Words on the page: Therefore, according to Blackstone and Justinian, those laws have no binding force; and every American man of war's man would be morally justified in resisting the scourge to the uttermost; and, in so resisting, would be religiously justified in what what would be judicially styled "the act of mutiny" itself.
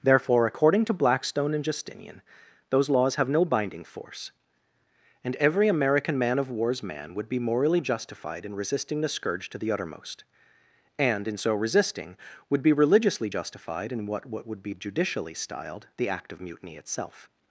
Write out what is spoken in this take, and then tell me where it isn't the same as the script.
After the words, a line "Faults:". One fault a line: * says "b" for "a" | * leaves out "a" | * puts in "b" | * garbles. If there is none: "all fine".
Therefore, according to Blackstone and Justinian, those laws have no binding force; and every American man of war's man would be morally justified in resisting the scourge to the uttermost; and, in so resisting, would be religiously justified in what what would be judicially styled "the act of mutiny" itself.
Faults:
all fine